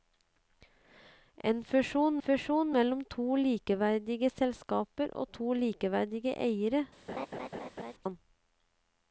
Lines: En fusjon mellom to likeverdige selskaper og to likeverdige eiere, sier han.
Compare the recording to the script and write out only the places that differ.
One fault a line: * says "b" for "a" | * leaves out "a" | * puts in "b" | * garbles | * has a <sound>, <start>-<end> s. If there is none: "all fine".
* puts in "fusjon"
* leaves out "sier"
* has a laugh, 7.1-7.9 s